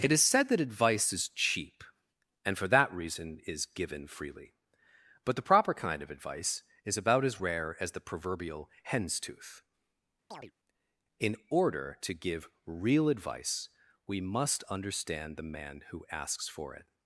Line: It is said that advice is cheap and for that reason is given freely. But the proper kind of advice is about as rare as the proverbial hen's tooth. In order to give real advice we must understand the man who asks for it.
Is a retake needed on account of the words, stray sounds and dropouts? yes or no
yes